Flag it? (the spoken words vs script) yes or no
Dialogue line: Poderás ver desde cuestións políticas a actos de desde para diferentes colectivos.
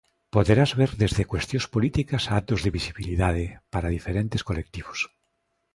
yes